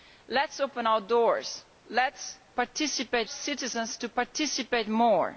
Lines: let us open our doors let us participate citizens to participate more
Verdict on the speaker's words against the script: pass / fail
pass